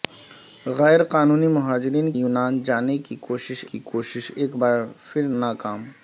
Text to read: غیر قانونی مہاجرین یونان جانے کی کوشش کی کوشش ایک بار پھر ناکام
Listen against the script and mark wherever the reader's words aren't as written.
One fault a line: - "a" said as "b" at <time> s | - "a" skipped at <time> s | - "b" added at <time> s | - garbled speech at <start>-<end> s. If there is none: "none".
none